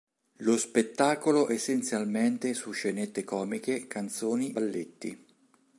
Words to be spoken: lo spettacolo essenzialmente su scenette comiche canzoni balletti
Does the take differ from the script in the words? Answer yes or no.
no